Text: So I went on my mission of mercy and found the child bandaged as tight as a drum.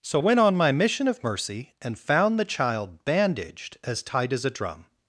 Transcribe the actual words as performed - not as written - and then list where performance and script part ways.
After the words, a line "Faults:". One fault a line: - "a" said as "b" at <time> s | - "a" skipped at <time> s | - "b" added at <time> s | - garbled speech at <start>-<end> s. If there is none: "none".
So went on my mission of mercy and found the child bandaged as tight as a drum.
Faults:
- "I" skipped at 0.2 s